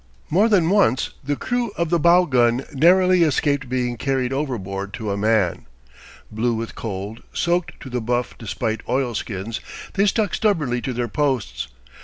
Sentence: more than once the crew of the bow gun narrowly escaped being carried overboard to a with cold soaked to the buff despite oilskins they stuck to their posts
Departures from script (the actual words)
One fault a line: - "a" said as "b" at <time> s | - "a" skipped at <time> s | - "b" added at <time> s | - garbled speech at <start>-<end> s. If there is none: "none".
- "man blue" added at 5.2 s
- "stubbornly" added at 10.3 s